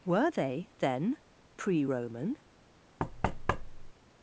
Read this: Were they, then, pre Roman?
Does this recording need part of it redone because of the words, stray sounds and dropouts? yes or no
yes